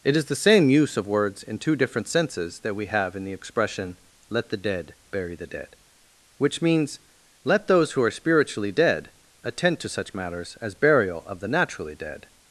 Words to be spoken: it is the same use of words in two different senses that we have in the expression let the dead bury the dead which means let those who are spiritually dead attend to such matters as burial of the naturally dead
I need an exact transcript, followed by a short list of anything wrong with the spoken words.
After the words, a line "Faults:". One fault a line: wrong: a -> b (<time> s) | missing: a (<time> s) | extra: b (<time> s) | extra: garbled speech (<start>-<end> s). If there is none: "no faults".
it is the same use of words in two different senses that we have in the expression let the dead bury the dead which means let those who are spiritually dead attend to such matters as burial of the naturally dead
Faults:
no faults